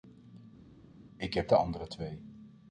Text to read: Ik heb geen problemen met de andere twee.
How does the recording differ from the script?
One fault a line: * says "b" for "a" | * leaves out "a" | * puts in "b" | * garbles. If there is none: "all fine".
* leaves out "geen problemen met"